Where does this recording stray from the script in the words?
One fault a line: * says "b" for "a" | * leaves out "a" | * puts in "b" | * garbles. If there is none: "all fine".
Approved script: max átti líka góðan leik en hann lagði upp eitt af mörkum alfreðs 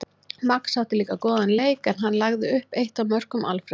all fine